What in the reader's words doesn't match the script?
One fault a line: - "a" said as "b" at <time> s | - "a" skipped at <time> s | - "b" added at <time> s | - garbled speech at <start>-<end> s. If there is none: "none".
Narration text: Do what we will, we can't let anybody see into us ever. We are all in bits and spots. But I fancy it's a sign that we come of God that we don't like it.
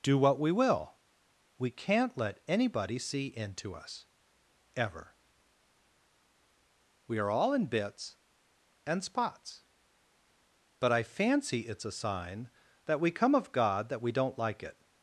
none